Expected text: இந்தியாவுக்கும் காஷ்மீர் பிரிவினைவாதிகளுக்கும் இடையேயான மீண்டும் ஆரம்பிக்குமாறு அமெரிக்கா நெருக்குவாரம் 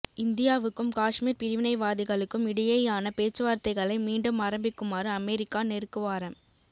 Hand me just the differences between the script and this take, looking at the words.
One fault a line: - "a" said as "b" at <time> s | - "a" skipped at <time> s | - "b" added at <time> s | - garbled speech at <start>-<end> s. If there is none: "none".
- "பேச்சுவார்த்தைகளை" added at 3.2 s